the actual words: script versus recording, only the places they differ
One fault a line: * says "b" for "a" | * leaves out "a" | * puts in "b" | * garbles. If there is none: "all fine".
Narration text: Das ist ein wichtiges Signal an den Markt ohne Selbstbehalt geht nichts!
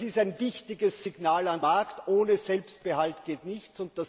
* leaves out "den"